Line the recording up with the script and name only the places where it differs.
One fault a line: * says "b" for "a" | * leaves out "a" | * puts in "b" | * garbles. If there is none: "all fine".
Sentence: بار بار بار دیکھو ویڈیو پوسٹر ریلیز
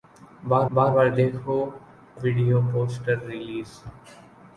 all fine